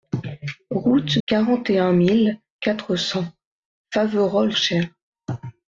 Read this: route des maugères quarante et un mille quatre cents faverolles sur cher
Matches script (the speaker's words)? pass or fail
fail